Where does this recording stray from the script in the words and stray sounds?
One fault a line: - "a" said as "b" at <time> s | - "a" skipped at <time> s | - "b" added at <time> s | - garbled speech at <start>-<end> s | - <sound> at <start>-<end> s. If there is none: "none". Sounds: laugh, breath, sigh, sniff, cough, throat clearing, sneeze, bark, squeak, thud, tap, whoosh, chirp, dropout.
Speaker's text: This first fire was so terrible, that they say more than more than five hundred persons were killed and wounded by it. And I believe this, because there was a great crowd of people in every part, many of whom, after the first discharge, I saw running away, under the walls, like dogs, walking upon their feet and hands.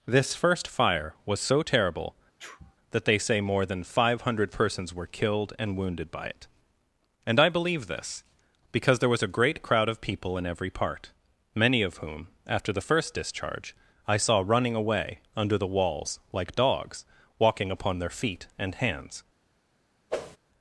- sneeze at 2.4-2.8 s
- "more than" skipped at 3.8 s
- whoosh at 20.1-20.4 s